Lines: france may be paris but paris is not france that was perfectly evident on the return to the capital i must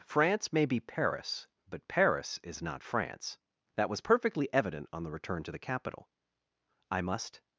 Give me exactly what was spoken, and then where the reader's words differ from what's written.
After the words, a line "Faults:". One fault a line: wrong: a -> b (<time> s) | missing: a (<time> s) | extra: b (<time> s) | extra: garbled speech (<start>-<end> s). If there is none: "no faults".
france may be paris but paris is not france that was perfectly evident on the return to the capital i must
Faults:
no faults